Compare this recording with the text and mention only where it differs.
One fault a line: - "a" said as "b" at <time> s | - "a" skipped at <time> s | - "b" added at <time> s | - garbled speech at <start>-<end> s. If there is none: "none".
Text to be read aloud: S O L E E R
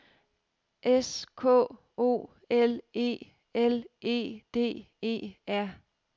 - "K" added at 1.4 s
- "L E D" added at 3.5 s